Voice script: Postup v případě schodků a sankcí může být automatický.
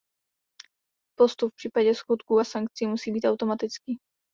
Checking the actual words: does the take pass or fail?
fail